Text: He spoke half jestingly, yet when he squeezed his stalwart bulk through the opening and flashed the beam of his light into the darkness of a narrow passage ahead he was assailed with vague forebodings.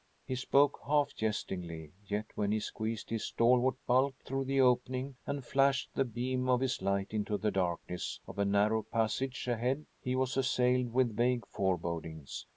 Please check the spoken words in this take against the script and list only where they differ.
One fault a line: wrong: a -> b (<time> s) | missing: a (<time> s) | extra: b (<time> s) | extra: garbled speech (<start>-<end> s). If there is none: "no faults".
no faults